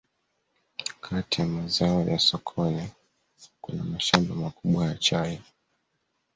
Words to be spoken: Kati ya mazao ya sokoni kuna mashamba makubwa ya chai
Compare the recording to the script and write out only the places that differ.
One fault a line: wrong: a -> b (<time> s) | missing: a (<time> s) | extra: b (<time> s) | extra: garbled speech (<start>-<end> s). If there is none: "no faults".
no faults